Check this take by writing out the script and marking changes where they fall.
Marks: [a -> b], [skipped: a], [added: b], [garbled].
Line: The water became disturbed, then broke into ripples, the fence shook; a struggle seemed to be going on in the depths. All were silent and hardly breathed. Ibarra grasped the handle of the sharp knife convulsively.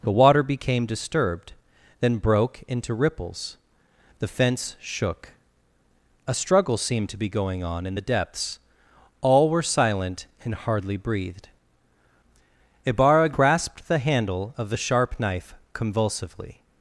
The water became disturbed, then broke into ripples, the fence shook; a struggle seemed to be going on in the depths. All were silent and hardly breathed. Ibarra grasped the handle of the sharp knife convulsively.